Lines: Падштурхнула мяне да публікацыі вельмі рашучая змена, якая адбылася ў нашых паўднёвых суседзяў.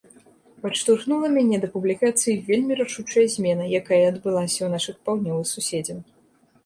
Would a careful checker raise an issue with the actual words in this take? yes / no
no